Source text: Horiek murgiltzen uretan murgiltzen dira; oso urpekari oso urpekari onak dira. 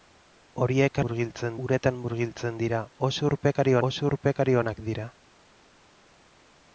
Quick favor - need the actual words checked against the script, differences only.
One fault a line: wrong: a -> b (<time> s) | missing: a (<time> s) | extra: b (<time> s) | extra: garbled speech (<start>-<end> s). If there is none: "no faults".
no faults